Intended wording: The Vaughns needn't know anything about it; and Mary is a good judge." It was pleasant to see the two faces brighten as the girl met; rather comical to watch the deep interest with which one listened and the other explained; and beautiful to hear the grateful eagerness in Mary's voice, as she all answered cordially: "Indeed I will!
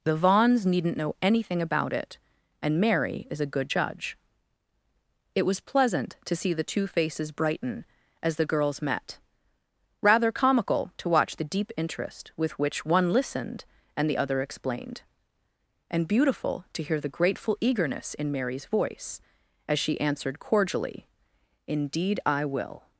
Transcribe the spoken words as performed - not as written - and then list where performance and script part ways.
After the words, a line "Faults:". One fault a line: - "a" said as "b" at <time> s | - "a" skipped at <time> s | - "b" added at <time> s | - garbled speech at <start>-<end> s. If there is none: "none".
The Vaughns needn't know anything about it; and Mary is a good judge." It was pleasant to see the two faces brighten as the girls met; rather comical to watch the deep interest with which one listened and the other explained; and beautiful to hear the grateful eagerness in Mary's voice, as she answered cordially: "Indeed I will!
Faults:
- "girl" said as "girls" at 8.5 s
- "all" skipped at 20.0 s